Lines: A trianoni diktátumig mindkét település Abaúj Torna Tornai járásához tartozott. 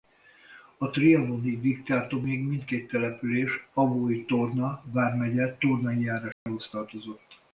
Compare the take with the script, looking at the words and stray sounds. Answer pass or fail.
fail